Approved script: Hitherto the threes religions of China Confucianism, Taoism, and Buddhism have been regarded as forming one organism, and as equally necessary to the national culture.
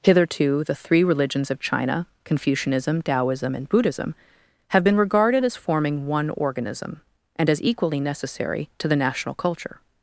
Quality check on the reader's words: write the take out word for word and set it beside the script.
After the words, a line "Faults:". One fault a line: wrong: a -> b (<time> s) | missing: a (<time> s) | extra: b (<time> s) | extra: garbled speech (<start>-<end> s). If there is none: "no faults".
Hitherto the three religions of China Confucianism, Taoism, and Buddhism have been regarded as forming one organism, and as equally necessary to the national culture.
Faults:
wrong: threes -> three (0.8 s)